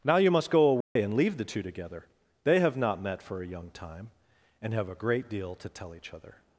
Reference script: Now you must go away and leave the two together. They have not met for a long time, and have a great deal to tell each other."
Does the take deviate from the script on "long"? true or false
true